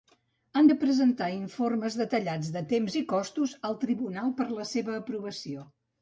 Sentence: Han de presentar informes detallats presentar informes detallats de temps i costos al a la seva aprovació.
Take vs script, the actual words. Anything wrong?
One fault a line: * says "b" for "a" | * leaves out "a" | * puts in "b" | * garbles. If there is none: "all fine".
* leaves out "presentar informes detallats"
* puts in "tribunal per"